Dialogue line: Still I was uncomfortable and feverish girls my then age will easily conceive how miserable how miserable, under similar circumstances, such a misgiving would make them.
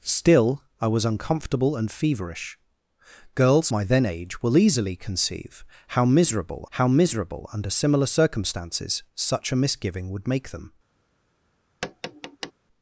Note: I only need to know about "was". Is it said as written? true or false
true